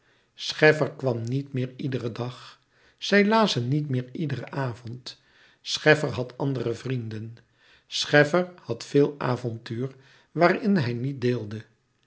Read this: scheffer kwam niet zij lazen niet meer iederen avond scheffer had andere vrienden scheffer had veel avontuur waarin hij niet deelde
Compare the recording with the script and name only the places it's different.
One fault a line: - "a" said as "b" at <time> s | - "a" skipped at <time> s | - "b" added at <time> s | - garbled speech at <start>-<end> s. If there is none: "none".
- "meer iederen dag" added at 1.5 s